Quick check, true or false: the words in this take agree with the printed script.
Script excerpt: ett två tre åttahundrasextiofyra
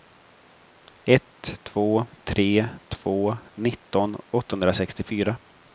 false